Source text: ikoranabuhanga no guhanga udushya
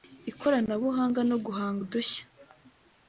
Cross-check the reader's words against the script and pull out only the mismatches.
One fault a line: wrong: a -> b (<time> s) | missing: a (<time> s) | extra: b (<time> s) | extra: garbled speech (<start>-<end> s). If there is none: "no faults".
no faults